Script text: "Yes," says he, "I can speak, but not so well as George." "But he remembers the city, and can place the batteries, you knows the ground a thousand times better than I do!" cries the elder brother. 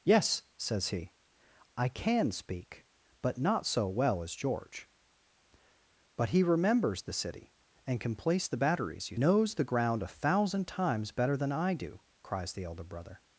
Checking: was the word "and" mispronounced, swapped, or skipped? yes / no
no